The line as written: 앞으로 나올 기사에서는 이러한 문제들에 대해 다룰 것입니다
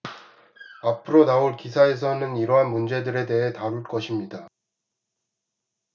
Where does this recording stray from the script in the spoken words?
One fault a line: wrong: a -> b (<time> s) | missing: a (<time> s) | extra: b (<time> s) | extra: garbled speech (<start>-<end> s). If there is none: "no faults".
no faults